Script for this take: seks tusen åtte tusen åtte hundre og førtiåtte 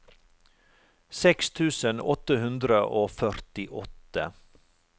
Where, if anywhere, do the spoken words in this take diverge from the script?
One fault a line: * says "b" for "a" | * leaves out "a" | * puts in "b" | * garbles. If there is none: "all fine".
* leaves out "tusen åtte"